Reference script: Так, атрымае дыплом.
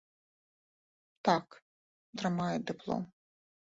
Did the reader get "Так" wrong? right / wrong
right